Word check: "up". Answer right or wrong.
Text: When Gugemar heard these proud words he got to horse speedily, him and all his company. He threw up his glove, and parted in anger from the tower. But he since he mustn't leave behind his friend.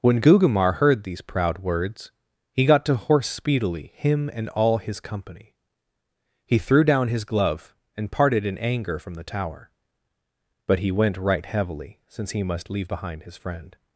wrong